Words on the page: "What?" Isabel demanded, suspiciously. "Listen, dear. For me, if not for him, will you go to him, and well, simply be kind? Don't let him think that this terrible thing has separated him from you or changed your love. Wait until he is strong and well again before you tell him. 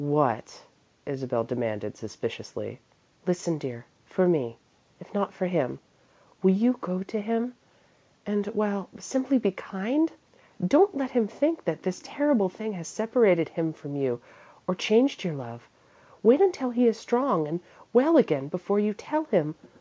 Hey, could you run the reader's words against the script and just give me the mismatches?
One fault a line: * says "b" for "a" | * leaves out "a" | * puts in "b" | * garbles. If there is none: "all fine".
all fine